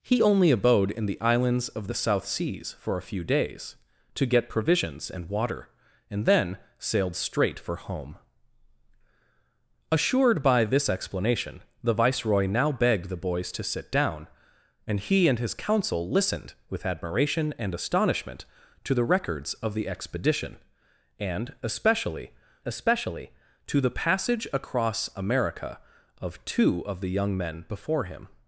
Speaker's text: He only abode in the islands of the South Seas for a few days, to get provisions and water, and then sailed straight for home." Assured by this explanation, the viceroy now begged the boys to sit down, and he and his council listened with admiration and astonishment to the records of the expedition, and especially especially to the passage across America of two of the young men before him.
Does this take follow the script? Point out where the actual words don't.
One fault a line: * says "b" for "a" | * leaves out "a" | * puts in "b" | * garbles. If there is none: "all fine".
all fine